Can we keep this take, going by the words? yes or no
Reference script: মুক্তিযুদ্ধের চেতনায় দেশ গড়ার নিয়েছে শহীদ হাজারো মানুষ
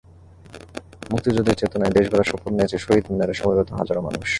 no